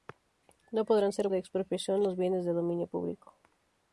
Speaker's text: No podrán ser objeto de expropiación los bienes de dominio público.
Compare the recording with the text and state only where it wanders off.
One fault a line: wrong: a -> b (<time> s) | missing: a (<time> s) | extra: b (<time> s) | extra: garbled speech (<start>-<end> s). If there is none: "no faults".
missing: objeto (1.3 s)